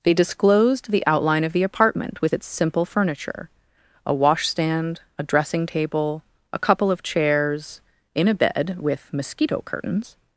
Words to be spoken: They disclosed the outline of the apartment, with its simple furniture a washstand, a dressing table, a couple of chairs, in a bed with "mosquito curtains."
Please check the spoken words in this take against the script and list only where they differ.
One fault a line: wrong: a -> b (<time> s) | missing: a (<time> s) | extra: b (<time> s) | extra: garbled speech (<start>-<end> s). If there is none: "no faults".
no faults